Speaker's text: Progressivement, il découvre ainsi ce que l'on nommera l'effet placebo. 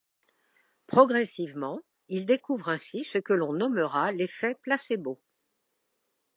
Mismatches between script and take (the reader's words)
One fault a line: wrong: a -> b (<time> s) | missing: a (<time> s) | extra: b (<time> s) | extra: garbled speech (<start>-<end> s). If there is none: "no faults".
no faults